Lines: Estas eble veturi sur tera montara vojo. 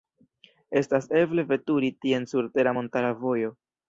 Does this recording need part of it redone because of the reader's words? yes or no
yes